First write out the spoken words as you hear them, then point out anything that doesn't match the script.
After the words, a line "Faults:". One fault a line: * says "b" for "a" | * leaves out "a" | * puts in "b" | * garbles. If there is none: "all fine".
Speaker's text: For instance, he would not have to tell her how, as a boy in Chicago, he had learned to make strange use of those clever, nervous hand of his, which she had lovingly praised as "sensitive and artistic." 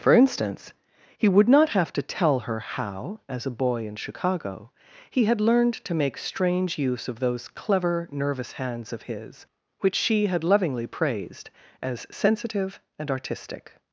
For instance, he would not have to tell her how, as a boy in Chicago, he had learned to make strange use of those clever, nervous hands of his, which she had lovingly praised as "sensitive and artistic."
Faults:
* says "hands" for "hand"